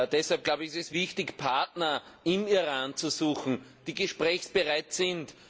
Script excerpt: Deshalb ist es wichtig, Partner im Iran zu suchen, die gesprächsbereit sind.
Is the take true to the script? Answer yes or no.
yes